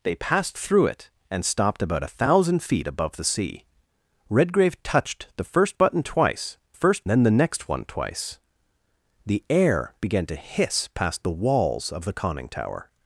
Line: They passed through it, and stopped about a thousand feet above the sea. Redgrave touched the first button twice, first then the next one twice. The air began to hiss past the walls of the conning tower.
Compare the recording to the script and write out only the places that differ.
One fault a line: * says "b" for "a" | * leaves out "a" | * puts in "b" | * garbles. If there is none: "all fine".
all fine